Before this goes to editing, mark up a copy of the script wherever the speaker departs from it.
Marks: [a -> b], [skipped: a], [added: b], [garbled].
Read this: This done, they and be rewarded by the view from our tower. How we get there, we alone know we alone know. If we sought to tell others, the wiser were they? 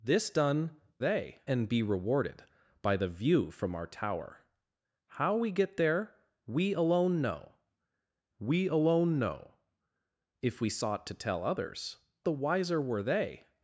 This done, they and be rewarded by the view from our tower. How we get there, we alone know we alone know. If we sought to tell others, the wiser were they?